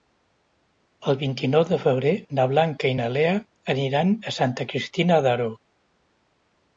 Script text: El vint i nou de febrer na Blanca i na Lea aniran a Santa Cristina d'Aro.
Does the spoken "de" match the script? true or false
true